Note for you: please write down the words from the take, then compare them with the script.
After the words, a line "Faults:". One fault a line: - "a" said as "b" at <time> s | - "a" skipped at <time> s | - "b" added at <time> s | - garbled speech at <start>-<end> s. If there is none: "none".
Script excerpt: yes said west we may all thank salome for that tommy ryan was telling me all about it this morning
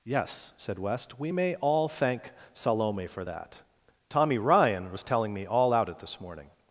yes said west we may all thank salome for that tommy ryan was telling me all out it this morning
Faults:
- "about" said as "out" at 5.7 s